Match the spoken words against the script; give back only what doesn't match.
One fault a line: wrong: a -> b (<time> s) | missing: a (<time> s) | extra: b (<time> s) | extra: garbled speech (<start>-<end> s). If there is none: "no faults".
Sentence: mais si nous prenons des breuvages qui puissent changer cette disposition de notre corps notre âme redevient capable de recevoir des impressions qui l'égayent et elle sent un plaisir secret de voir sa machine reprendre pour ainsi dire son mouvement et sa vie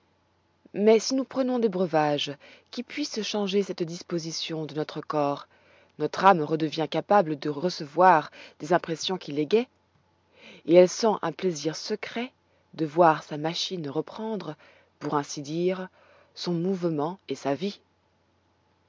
no faults